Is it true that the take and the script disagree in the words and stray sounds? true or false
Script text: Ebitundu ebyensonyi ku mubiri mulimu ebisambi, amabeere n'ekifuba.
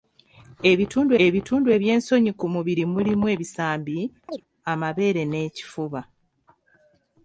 true